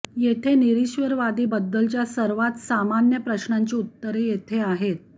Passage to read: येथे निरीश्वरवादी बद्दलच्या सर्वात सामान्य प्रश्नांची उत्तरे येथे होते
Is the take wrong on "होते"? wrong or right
wrong